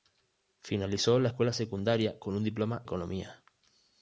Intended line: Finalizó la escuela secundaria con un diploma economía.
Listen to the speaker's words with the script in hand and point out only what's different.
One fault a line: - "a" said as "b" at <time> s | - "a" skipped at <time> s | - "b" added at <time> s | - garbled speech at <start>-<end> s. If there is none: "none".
none